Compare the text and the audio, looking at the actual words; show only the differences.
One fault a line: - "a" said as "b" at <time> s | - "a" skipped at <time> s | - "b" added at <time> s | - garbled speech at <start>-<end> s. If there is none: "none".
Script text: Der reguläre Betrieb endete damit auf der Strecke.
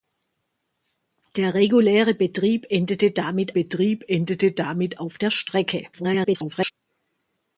- "Betrieb endete damit" added at 3.5 s
- garbled speech at 5.9-6.7 s